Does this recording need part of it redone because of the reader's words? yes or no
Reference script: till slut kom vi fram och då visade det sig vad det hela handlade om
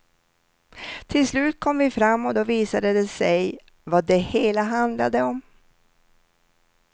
no